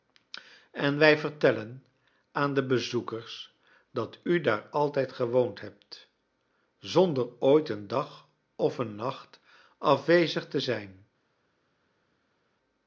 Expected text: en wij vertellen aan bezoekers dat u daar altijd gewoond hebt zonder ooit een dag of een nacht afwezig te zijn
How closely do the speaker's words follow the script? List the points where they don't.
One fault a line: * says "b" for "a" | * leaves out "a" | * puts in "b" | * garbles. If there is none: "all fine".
* puts in "de"